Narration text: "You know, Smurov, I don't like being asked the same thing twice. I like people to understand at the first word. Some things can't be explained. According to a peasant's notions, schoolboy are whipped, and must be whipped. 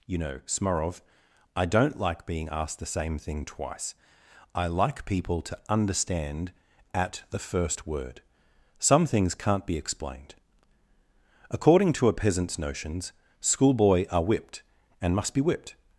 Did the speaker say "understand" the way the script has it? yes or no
yes